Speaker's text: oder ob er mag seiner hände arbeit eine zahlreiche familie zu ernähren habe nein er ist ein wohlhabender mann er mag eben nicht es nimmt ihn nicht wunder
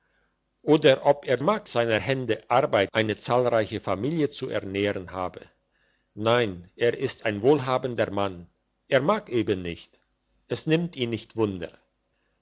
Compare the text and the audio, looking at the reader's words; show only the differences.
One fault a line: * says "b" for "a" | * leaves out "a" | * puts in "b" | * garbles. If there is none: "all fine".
all fine